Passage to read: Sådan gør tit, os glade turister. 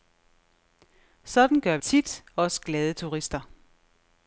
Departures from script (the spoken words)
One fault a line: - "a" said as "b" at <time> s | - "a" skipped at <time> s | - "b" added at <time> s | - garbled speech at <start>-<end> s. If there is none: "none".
none